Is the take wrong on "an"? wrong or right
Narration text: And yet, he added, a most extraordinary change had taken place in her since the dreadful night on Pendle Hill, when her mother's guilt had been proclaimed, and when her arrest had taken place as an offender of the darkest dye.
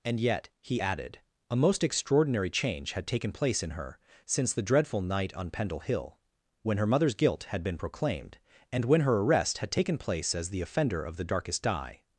wrong